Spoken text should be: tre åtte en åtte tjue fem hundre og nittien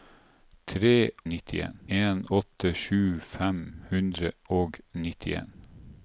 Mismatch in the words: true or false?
true